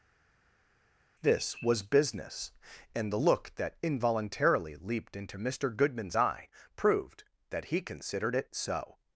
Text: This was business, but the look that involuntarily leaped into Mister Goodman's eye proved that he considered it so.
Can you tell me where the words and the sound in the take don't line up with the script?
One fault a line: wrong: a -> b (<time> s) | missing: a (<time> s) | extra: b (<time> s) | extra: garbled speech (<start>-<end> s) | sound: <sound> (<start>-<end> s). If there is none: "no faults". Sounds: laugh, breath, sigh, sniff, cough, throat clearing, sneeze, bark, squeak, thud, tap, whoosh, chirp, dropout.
wrong: but -> and (2.9 s)